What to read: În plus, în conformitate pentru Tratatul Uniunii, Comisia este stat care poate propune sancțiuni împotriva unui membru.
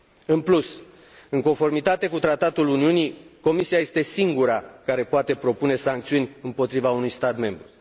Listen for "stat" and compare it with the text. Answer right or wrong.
wrong